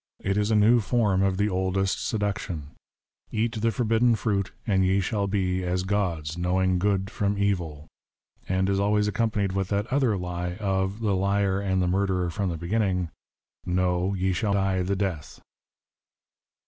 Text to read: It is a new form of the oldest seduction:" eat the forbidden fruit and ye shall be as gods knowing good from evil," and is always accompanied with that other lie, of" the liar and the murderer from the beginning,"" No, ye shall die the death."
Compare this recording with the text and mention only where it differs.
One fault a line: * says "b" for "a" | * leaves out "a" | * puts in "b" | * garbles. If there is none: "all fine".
all fine